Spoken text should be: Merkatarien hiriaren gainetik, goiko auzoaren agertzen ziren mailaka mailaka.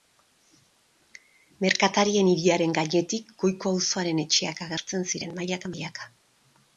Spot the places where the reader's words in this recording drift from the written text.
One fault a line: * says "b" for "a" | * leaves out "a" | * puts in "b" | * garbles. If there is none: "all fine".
* puts in "etxeak"